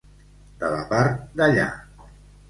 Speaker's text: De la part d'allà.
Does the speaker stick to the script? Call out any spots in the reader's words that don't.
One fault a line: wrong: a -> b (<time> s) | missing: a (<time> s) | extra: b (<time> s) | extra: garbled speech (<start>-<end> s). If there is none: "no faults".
no faults